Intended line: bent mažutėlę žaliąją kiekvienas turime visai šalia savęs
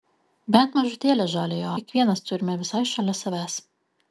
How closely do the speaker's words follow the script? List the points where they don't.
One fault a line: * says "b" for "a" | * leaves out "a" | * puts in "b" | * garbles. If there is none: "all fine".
all fine